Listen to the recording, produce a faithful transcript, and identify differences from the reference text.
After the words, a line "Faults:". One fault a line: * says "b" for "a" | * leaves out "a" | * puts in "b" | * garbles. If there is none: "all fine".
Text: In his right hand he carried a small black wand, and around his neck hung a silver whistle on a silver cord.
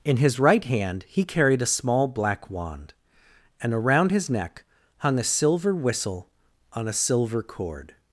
In his right hand he carried a small black wand, and around his neck hung a silver whistle on a silver cord.
Faults:
all fine